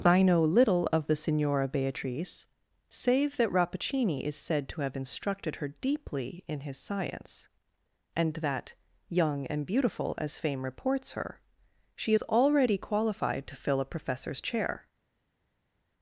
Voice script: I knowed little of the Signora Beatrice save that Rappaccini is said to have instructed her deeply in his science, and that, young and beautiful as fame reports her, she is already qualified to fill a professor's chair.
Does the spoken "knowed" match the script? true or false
false